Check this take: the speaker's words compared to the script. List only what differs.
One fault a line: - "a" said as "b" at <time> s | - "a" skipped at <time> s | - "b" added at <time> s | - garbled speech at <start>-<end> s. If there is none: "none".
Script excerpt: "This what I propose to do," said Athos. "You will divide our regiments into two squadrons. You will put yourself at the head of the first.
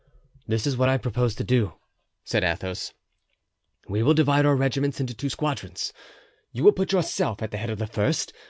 - "is" added at 0.7 s
- "You" said as "We" at 3.9 s